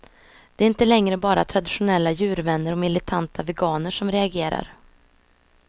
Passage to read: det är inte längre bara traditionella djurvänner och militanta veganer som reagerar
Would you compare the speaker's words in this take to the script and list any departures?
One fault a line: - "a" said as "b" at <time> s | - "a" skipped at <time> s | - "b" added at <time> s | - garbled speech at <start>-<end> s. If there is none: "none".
none